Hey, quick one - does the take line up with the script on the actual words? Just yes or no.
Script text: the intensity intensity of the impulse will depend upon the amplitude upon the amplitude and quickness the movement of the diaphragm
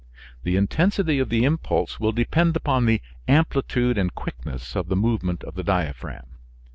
no